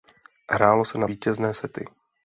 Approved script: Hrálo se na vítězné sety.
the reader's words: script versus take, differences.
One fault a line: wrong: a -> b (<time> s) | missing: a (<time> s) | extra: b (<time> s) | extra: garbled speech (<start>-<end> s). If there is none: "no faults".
no faults